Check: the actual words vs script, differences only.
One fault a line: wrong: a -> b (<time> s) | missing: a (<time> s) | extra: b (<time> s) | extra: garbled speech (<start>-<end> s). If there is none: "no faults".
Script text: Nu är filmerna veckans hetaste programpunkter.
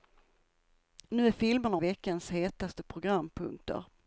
no faults